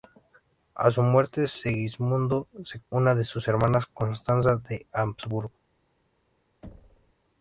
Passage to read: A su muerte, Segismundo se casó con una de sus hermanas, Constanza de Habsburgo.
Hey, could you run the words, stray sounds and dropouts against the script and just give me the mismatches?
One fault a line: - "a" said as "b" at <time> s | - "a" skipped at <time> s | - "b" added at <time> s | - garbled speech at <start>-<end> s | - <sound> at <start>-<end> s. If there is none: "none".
- "casó con" skipped at 2.8 s
- thud at 6.6-7.1 s